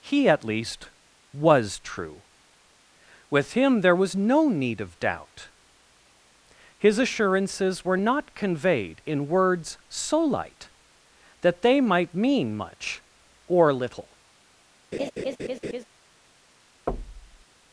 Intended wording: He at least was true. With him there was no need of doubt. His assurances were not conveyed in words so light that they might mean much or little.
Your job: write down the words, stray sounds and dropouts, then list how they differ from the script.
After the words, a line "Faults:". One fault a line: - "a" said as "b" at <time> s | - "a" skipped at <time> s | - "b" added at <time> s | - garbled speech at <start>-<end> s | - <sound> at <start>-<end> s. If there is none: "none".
He at least was true. With him there was no need of doubt. His assurances were not conveyed in words so light that they might mean much or little.
Faults:
- laugh at 14.9-15.8 s
- thud at 16.9-17.5 s